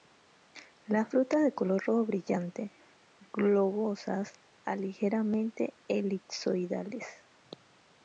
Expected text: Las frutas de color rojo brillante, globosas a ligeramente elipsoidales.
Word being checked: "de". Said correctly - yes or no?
yes